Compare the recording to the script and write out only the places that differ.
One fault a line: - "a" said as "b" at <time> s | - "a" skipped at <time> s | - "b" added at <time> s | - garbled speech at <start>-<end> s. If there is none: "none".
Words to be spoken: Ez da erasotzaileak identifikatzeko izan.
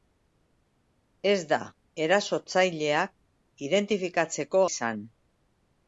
none